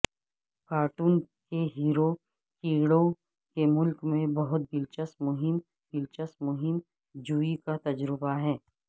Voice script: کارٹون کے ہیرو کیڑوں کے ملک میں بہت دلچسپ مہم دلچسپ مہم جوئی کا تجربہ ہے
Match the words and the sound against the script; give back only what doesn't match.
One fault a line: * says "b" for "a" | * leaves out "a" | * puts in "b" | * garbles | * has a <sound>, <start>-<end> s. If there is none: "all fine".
all fine